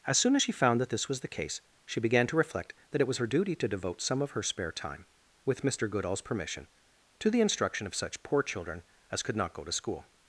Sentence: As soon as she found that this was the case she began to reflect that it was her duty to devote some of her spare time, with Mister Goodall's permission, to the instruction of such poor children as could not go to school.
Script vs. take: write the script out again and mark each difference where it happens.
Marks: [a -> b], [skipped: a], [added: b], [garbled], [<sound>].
As soon as she found that this was the case she began to reflect that it was her duty to devote some of her spare time, with Mister Goodall's permission, to the instruction of such poor children as could not go to school.